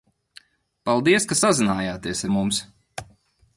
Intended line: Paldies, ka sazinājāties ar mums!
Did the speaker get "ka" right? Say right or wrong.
right